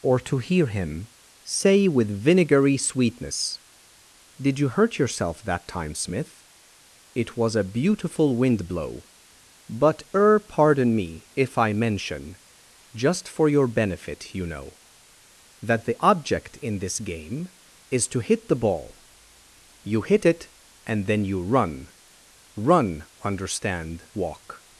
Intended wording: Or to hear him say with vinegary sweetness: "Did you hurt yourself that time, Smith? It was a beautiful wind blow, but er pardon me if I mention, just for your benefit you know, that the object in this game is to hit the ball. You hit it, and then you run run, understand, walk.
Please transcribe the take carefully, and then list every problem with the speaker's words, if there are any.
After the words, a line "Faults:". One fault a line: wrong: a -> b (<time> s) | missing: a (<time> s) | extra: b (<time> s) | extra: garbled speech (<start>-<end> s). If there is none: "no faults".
Or to hear him say with vinegary sweetness: "Did you hurt yourself that time, Smith? It was a beautiful wind blow, but er pardon me if I mention, just for your benefit you know, that the object in this game is to hit the ball. You hit it, and then you run run, understand, walk.
Faults:
no faults